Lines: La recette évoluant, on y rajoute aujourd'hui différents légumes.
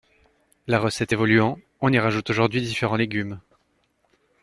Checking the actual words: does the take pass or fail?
pass